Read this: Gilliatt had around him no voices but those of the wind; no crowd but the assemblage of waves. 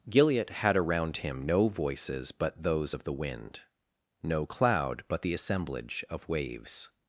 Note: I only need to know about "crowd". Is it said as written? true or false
false